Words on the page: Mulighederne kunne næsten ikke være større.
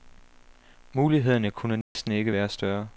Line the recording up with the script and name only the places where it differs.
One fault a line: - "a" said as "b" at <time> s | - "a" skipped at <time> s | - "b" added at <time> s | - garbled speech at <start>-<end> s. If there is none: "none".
none